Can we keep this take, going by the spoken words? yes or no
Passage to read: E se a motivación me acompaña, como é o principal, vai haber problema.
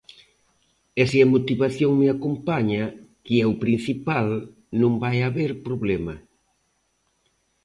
no